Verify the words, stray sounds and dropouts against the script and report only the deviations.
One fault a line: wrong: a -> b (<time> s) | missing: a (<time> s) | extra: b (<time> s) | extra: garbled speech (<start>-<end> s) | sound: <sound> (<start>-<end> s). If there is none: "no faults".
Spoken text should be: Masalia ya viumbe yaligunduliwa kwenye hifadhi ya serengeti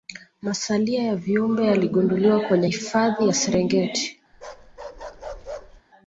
sound: bark (4.3-5.8 s)